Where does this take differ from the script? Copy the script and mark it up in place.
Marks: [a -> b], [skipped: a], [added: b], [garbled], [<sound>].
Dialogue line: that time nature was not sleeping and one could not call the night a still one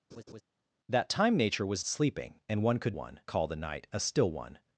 [laugh] that time nature was [skipped: not] sleeping and one could [not -> one] call the night a still one